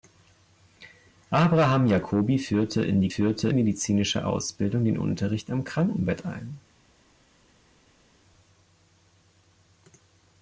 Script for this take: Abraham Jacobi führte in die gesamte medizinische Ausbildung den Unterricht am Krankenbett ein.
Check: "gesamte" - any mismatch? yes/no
yes